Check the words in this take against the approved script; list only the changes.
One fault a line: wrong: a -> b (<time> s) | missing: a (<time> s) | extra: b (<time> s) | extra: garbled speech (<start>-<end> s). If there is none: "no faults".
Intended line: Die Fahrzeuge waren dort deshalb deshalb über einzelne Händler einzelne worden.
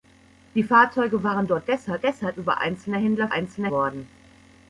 no faults